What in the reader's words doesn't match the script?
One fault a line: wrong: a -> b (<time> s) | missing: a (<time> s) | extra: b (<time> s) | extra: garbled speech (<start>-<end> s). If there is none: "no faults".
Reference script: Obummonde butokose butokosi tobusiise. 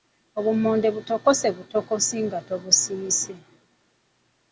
extra: nga (2.2 s)